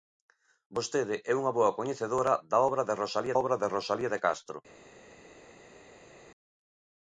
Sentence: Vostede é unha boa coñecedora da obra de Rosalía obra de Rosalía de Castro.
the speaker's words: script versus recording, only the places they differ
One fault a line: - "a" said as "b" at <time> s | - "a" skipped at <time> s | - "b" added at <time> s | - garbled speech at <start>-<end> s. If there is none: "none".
none